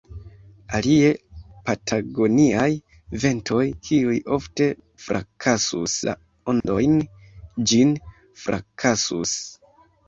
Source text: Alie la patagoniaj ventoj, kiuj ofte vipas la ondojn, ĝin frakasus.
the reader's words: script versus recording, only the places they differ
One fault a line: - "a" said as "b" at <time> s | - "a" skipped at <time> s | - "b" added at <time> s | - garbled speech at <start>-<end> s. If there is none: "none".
- "la" skipped at 1.1 s
- "vipas" said as "frakasus" at 5.1 s